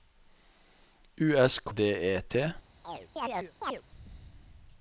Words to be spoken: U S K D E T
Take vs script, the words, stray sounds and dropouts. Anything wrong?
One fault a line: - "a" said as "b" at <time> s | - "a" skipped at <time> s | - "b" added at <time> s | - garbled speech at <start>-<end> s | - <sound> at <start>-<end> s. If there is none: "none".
- chirp at 2.8-3.8 s